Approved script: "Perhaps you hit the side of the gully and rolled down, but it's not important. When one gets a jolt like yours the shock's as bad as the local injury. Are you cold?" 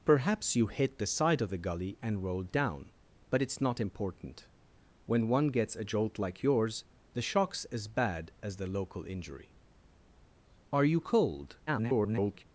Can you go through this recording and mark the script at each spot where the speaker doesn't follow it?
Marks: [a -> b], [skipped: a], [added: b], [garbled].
"Perhaps you hit the side of the gully and rolled down, but it's not important. When one gets a jolt like yours the shock's as bad as the local injury. Are you cold?" [garbled]